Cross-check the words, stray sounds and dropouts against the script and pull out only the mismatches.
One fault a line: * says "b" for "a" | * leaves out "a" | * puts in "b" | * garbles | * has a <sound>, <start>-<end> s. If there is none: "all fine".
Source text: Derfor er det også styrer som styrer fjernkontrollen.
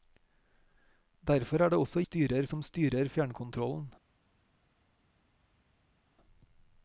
all fine